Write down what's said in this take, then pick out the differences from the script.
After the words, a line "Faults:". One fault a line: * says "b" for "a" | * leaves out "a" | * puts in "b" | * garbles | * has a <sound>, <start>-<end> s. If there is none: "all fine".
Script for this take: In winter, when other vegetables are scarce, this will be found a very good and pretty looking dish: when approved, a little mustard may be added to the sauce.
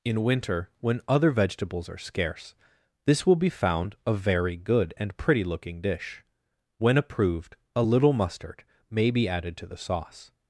In winter, when other vegetables are scarce, this will be found a very good and pretty looking dish: when approved, a little mustard may be added to the sauce.
Faults:
all fine